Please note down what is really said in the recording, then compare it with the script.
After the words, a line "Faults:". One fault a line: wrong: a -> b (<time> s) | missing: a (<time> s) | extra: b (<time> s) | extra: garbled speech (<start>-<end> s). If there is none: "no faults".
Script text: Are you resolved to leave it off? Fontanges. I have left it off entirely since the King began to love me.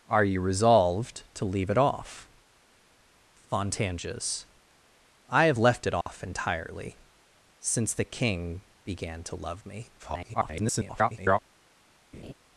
Are you resolved to leave it off? Fontanges. I have left it off entirely since the King began to love me. [garbled]
Faults:
extra: garbled speech (10.0-11.4 s)